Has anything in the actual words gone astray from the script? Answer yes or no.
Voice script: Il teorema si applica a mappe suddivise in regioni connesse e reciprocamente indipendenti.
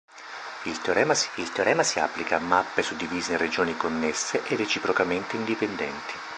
yes